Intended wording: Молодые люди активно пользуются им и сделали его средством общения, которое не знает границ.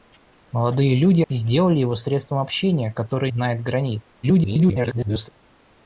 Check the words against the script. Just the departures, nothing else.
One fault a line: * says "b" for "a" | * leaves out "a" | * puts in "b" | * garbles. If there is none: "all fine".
* leaves out "активно пользуются им"
* leaves out "не"
* garbles